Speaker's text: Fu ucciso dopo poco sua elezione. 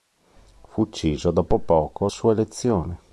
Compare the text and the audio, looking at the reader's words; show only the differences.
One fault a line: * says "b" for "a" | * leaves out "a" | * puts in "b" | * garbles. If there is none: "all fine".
all fine